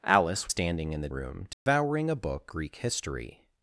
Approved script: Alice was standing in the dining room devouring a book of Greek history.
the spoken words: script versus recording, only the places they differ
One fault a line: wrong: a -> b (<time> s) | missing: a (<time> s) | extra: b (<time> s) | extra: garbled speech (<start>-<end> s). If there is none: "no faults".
missing: was (0.5 s)
missing: dining (1.1 s)
missing: of (2.5 s)